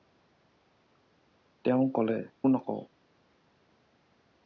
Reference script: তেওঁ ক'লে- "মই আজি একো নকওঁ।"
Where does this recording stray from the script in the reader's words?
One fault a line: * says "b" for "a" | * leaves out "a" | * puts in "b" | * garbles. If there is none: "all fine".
* leaves out "মই আজি একো"